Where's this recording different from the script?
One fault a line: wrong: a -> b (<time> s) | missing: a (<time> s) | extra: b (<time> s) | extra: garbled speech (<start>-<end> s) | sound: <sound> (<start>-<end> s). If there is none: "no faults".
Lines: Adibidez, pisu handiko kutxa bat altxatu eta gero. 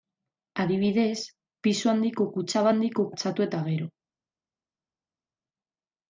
wrong: bat -> handiko (2.7 s)